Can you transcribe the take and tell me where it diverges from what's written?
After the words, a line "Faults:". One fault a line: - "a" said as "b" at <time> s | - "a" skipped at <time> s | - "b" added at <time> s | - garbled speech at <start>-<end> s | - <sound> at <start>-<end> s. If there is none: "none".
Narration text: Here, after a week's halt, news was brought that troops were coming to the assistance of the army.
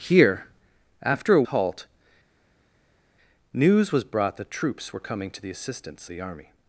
Here, after a halt, news was brought that troops were coming to the assistance the army.
Faults:
- "week's" skipped at 1.4 s
- "of" skipped at 6.1 s